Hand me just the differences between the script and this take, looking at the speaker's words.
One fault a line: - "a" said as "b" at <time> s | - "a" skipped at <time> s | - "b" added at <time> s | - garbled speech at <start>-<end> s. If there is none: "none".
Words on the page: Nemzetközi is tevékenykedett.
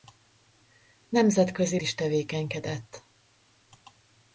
none